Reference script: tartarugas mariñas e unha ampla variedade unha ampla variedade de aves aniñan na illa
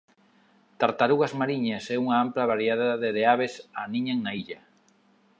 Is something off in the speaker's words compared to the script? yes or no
yes